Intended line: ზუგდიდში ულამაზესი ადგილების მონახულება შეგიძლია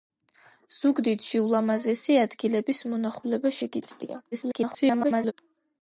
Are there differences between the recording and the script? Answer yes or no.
yes